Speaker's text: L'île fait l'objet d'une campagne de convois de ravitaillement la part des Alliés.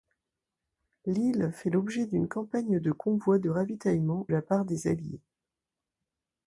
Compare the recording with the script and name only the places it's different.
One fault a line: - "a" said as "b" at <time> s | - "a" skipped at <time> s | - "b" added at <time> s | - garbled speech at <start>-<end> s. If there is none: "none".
none